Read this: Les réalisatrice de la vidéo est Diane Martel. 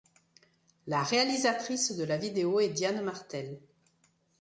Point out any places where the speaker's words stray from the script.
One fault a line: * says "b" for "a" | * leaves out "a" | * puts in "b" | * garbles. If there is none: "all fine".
* says "La" for "Les"